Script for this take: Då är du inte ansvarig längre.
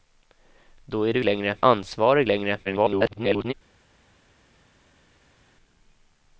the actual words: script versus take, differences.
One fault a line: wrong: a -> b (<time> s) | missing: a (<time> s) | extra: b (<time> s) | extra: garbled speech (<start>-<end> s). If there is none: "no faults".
wrong: inte -> längre (1.2 s)
extra: garbled speech (2.6-3.5 s)